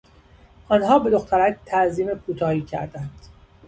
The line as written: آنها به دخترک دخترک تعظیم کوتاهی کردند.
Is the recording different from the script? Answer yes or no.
yes